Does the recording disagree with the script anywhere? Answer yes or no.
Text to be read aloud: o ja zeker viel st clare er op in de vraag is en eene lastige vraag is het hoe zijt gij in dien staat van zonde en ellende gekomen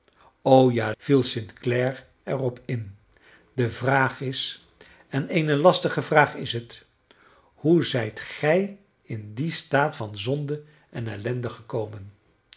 yes